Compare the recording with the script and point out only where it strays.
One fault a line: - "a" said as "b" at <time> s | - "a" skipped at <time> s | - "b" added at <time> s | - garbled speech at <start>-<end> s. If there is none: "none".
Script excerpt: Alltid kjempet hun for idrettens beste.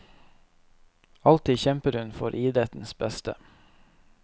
none